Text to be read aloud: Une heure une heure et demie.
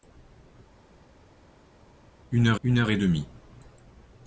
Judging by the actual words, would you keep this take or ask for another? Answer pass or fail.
pass